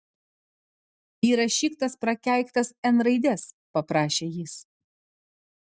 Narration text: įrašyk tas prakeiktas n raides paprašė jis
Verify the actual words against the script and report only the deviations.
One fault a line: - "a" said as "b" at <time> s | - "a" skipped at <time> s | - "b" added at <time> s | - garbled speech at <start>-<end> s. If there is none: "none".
none